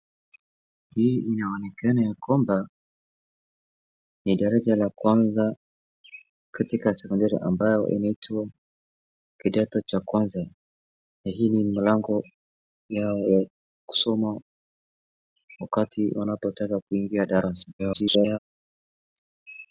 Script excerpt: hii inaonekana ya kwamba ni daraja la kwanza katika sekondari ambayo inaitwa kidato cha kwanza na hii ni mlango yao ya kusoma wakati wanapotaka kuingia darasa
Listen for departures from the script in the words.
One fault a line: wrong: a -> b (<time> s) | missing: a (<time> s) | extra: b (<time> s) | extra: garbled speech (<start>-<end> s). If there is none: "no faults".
extra: garbled speech (17.8-18.4 s)